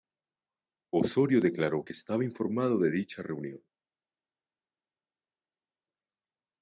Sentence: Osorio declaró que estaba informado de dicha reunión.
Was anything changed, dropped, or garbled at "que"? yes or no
no